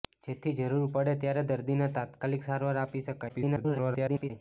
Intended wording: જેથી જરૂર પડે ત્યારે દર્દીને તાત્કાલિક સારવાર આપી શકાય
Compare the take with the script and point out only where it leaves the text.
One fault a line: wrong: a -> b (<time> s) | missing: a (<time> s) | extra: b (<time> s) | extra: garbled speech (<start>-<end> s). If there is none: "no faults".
extra: garbled speech (3.3-4.3 s)